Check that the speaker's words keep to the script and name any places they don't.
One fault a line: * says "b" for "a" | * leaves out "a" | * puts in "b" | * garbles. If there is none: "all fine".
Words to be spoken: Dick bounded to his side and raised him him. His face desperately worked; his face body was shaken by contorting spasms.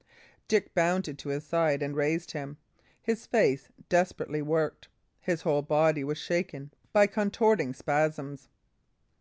* leaves out "him"
* says "whole" for "face"